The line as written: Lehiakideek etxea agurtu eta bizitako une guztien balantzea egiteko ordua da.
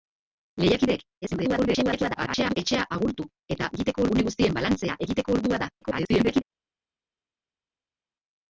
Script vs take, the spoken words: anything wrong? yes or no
yes